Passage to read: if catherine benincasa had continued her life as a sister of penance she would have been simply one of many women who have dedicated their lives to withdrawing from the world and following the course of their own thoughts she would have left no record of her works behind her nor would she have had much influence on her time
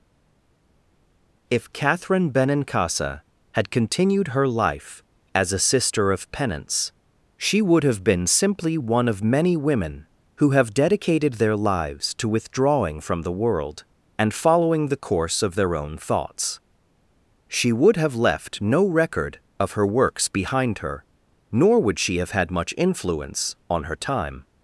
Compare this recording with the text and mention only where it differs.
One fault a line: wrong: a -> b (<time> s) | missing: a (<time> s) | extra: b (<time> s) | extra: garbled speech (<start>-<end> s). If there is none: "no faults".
no faults